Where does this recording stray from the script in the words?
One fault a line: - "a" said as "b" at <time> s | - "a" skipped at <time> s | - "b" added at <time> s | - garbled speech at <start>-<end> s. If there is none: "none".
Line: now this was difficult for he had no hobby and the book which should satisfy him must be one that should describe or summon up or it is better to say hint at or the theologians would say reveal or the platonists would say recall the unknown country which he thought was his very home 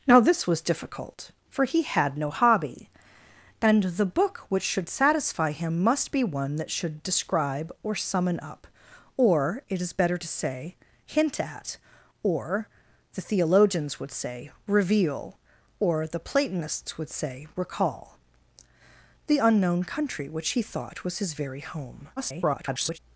- garbled speech at 22.2-23.0 s